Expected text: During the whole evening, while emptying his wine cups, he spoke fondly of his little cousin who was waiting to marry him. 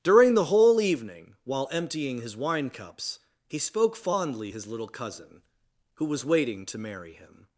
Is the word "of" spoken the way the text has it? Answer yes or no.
no